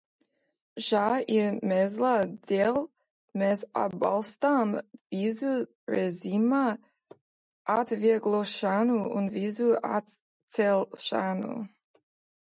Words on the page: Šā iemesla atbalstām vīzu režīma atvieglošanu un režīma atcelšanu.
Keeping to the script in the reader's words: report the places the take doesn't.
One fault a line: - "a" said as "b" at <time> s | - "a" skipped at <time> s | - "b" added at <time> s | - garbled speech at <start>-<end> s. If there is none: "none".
- "dēļ mēs" added at 2.5 s
- "režīma" said as "vīzu" at 9.4 s